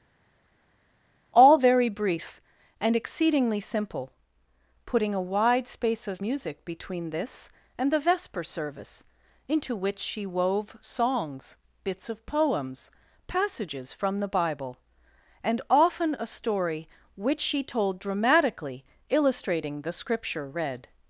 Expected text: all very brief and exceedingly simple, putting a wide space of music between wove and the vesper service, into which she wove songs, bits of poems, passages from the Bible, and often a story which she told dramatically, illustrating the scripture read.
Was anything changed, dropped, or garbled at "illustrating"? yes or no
no